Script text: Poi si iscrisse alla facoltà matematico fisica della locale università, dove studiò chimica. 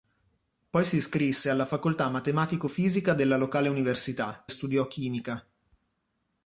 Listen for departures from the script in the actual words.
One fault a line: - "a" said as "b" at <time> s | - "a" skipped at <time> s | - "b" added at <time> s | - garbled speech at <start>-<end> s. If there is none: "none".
- "dove" skipped at 4.5 s